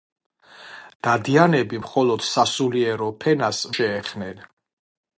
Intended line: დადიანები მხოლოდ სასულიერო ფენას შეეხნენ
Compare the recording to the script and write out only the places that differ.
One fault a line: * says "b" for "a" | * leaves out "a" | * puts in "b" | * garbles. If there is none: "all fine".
all fine